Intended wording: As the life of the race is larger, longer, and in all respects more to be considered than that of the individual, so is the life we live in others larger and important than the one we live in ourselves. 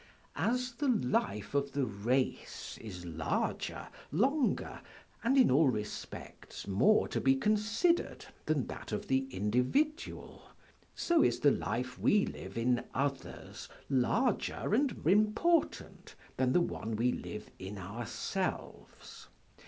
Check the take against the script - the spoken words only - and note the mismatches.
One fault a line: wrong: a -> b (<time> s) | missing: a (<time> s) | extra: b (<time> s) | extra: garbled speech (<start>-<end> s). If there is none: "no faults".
no faults